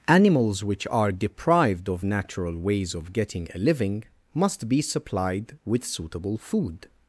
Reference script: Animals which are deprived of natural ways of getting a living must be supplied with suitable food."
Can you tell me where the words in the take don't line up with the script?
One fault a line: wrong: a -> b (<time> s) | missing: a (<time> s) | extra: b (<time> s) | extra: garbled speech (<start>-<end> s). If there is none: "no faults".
no faults